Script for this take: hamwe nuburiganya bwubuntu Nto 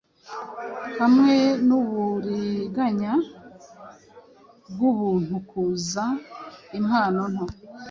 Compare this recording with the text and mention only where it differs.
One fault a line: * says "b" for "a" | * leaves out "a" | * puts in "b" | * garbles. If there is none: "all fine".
* puts in "Kuza impano"